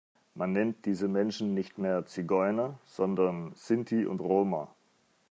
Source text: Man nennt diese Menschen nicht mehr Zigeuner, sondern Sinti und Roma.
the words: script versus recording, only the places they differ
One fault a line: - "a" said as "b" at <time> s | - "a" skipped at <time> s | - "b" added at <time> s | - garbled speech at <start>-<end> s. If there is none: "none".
none